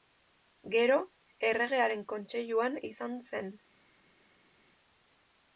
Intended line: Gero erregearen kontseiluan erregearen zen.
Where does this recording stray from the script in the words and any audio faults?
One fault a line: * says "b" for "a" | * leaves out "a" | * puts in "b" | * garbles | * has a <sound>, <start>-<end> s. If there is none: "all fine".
* says "izan" for "erregearen"